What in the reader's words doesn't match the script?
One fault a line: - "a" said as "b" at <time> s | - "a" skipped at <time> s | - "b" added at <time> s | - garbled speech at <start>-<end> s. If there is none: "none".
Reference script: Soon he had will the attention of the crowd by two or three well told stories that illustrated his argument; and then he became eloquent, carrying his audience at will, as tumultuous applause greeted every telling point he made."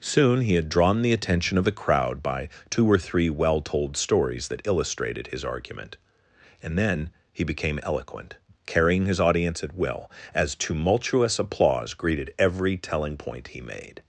- "will" said as "drawn" at 0.7 s